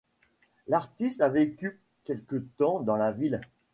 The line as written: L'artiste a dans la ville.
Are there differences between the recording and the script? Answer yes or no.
yes